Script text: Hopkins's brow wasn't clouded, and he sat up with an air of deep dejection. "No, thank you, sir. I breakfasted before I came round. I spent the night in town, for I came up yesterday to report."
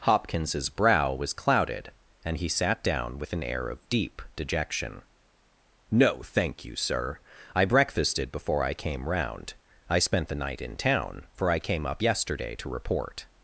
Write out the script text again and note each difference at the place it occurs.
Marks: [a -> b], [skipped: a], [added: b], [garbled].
Hopkins's brow [wasn't -> was] clouded, and he sat [up -> down] with an air of deep dejection. "No, thank you, sir. I breakfasted before I came round. I spent the night in town, for I came up yesterday to report."